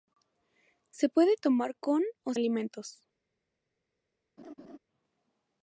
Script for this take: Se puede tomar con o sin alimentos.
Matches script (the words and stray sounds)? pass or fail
fail